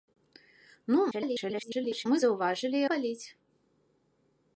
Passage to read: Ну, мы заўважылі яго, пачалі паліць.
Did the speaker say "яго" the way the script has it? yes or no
no